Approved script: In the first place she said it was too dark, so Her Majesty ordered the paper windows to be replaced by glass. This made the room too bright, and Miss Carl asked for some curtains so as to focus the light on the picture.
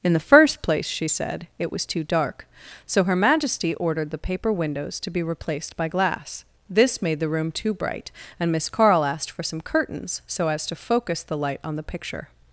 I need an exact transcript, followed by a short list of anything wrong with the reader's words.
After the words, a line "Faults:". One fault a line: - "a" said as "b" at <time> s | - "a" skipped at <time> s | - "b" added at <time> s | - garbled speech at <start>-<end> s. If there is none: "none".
In the first place she said it was too dark, so Her Majesty ordered the paper windows to be replaced by glass. This made the room too bright, and Miss Carl asked for some curtains so as to focus the light on the picture.
Faults:
none